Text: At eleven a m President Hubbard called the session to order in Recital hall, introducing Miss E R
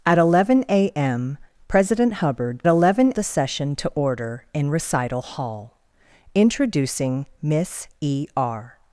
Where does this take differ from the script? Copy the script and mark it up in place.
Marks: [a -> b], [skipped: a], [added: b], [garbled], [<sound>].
At eleven a m President Hubbard [called -> eleven] the session to order in Recital hall, introducing Miss E R